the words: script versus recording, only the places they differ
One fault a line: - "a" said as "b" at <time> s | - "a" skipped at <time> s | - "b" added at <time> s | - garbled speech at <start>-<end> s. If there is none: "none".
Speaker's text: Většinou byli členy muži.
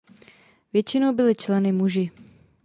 none